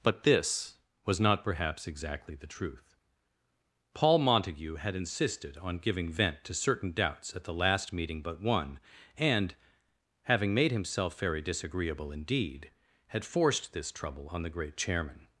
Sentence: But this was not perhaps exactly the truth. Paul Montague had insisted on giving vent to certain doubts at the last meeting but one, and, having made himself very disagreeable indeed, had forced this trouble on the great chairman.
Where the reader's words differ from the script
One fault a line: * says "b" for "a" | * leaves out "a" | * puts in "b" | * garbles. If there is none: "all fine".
all fine